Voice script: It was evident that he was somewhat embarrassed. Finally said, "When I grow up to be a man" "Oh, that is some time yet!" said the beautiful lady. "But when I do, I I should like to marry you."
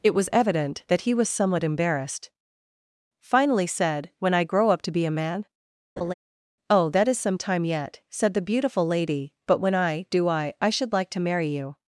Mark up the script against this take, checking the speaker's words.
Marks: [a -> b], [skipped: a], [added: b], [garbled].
It was evident that he was somewhat embarrassed. Finally said, "When I grow up to be a man" "Oh, that is some time yet!" said the beautiful lady. "But when I do, I I should like to marry you."